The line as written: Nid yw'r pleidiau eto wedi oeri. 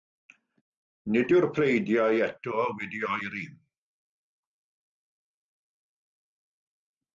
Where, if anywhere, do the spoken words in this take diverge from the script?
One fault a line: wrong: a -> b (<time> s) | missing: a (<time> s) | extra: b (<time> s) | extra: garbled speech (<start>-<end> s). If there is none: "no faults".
no faults